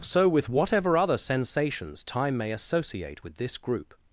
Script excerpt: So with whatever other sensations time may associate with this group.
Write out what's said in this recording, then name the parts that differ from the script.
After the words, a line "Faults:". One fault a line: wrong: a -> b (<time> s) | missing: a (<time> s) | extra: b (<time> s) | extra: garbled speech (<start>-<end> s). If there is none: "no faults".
So with whatever other sensations time may associate with this group.
Faults:
no faults